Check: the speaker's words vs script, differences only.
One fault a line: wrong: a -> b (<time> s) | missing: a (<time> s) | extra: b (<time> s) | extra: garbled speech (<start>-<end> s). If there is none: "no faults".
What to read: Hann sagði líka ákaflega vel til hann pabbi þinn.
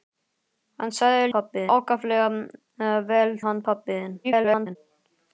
wrong: líka -> pabbi (1.4 s)
missing: til (3.4 s)
extra: garbled speech (4.2-4.8 s)